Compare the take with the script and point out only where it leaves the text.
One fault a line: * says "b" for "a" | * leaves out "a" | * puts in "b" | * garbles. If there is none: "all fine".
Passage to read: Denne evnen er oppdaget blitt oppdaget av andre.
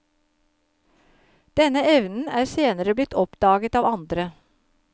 * says "senere" for "oppdaget"